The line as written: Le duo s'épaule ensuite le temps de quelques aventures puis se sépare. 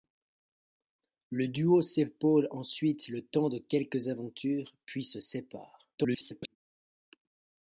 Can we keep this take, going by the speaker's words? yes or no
no